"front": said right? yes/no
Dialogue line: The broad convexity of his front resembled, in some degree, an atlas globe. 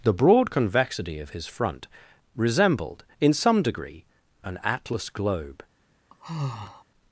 yes